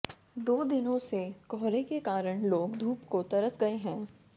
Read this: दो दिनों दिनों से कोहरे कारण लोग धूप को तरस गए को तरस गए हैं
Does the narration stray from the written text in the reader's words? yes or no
yes